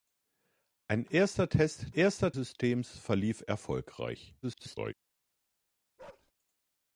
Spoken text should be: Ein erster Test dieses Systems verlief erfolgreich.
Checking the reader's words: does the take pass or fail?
fail